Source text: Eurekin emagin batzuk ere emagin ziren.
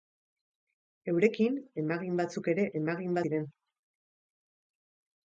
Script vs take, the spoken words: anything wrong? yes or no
no